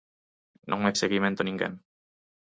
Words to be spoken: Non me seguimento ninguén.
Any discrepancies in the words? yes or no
no